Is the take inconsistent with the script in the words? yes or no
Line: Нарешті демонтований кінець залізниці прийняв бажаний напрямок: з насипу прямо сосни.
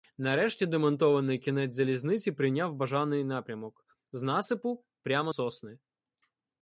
no